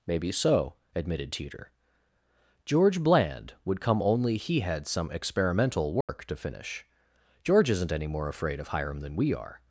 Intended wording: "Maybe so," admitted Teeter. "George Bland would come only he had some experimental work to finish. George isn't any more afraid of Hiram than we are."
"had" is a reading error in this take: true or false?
false